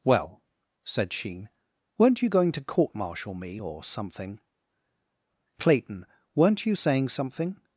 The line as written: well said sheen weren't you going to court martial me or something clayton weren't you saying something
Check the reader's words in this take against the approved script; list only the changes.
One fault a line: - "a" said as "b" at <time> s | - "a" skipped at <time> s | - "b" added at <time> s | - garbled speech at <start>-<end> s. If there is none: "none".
none